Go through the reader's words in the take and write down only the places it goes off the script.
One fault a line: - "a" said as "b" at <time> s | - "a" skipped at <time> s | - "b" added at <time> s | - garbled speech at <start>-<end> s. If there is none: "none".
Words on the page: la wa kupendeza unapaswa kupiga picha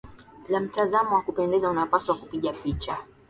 - "mtazamo" added at 0.6 s